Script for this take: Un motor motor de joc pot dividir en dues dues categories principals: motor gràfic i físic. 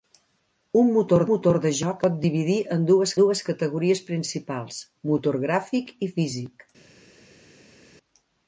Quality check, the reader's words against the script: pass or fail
pass